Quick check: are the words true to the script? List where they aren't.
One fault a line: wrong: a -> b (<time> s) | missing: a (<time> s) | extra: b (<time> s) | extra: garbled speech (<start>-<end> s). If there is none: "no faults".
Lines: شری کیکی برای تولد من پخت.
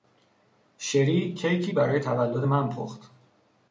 no faults